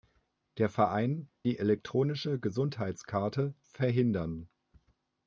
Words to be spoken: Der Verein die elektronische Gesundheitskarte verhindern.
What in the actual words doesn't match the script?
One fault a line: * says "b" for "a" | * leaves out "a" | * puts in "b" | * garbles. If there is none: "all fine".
all fine